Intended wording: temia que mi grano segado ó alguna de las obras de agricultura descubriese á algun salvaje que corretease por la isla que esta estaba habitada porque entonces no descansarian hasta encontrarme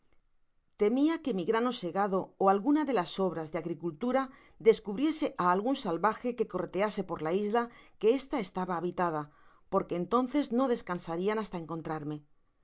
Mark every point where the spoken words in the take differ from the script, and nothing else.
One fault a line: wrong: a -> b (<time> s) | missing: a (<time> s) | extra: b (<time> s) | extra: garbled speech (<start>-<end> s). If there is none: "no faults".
no faults